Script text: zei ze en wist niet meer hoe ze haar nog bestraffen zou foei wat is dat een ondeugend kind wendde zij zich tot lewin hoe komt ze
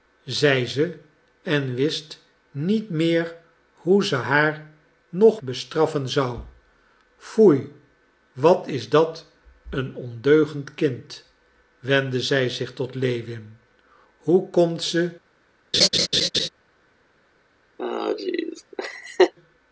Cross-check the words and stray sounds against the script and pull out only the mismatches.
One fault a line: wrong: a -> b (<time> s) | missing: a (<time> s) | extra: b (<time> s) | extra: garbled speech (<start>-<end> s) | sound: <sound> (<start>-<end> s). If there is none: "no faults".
sound: laugh (15.7-16.5 s)
sound: laugh (17.8-19.3 s)